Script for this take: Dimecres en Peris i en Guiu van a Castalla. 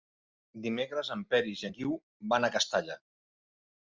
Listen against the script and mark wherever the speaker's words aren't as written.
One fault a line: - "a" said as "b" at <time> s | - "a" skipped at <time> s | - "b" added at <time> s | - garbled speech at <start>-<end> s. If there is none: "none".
none